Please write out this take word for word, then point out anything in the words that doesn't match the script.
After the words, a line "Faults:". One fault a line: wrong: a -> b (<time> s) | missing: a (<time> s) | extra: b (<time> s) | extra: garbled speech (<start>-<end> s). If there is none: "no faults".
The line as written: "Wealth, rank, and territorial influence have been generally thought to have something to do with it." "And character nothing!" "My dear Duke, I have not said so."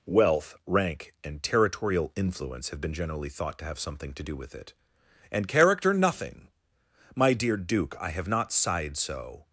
"Wealth, rank, and territorial influence have been generally thought to have something to do with it." "And character nothing!" "My dear Duke, I have not sighed so."
Faults:
wrong: said -> sighed (8.5 s)